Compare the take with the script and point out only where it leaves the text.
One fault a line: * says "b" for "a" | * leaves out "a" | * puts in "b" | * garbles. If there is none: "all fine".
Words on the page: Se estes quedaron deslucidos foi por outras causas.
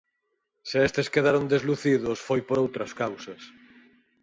all fine